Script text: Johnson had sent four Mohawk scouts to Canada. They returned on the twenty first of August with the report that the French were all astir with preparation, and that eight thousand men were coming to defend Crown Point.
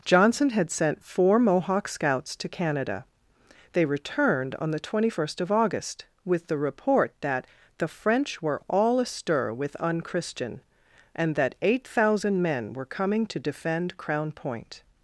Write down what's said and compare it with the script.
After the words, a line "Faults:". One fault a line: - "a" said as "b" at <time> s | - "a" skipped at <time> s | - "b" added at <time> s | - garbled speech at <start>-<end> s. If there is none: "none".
Johnson had sent four Mohawk scouts to Canada. They returned on the twenty first of August with the report that the French were all astir with unchristian, and that eight thousand men were coming to defend Crown Point.
Faults:
- "preparation" said as "unchristian" at 9.8 s